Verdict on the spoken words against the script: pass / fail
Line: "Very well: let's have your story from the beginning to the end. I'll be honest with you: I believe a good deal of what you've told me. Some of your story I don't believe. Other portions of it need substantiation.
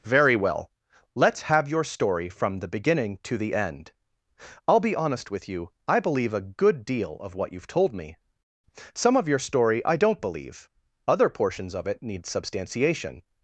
pass